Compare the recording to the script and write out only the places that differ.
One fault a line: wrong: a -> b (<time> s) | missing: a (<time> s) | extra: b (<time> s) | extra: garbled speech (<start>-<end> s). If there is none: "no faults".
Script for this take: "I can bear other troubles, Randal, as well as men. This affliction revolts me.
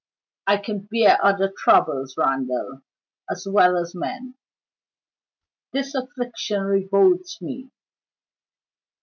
no faults